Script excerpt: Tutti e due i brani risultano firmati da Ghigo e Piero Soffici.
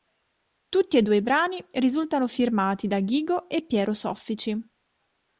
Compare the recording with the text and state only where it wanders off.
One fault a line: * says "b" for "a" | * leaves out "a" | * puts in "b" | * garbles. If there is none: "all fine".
all fine